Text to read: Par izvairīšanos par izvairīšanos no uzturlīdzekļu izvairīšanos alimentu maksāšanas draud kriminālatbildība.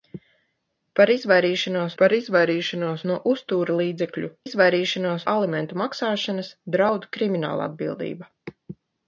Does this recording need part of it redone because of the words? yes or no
no